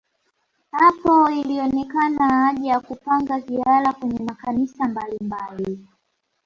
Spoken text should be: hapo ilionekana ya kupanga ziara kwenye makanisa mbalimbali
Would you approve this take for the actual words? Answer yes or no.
no